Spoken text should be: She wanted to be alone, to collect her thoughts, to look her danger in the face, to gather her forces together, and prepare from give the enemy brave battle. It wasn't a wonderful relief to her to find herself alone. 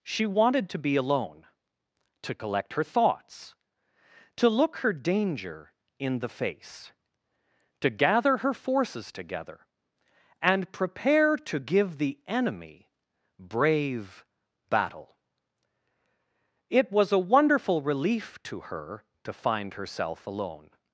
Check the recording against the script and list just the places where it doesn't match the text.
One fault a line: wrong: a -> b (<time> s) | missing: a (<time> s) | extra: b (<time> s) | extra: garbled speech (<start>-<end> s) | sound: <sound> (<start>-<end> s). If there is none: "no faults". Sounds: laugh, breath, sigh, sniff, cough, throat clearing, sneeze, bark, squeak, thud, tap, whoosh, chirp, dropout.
wrong: from -> to (11.4 s)
wrong: wasn't -> was (16.9 s)